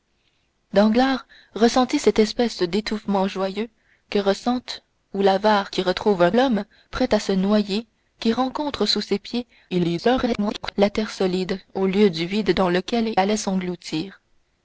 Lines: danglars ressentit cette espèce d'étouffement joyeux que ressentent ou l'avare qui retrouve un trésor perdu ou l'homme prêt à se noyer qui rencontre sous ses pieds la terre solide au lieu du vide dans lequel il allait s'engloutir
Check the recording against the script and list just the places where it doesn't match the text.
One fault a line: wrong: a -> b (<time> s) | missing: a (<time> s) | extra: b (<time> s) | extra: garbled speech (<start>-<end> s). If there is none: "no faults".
missing: trésor perdu ou (6.3 s)
extra: garbled speech (9.7-10.7 s)
missing: il (13.1 s)